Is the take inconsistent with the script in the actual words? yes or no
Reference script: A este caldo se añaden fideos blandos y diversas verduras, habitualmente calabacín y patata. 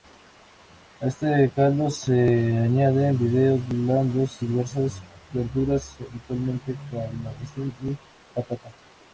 no